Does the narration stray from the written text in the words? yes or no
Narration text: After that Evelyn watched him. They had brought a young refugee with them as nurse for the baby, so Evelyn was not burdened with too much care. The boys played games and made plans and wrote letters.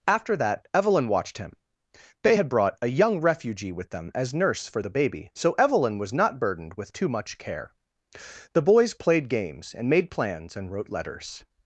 no